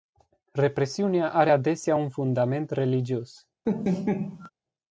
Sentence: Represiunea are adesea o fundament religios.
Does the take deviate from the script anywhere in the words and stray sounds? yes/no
yes